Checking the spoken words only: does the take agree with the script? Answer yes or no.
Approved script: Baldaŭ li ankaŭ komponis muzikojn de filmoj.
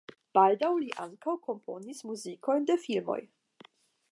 yes